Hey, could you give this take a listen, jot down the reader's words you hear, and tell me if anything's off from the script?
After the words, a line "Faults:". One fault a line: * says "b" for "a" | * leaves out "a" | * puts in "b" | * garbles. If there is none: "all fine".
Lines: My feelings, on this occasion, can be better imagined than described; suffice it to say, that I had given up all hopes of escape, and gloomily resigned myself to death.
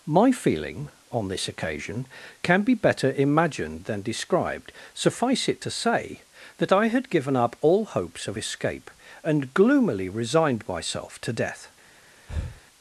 My feeling, on this occasion, can be better imagined than described; suffice it to say, that I had given up all hopes of escape, and gloomily resigned myself to death.
Faults:
* says "feeling" for "feelings"